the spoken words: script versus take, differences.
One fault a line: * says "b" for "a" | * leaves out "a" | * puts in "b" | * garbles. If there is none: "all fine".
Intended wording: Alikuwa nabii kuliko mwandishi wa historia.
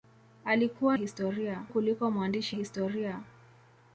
* says "historia" for "nabii"
* leaves out "wa"